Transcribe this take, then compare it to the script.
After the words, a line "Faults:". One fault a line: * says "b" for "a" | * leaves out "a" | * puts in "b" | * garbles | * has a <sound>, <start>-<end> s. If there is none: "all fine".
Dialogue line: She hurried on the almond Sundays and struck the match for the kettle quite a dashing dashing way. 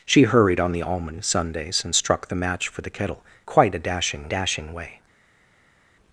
She hurried on the almond Sundays and struck the match for the kettle quite a dashing dashing way.
Faults:
all fine